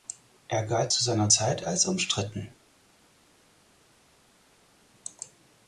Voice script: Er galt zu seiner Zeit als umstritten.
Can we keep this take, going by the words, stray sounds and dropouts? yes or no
yes